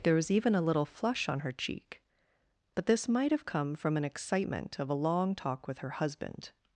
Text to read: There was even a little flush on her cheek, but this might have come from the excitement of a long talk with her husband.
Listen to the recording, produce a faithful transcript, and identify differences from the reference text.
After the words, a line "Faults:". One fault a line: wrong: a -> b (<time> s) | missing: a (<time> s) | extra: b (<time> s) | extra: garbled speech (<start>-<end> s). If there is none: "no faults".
There was even a little flush on her cheek, but this might have come from an excitement of a long talk with her husband.
Faults:
wrong: the -> an (4.0 s)